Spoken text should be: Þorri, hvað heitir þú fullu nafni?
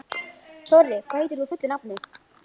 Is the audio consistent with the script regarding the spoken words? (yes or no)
yes